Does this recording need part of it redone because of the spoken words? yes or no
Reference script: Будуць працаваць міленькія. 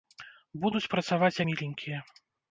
no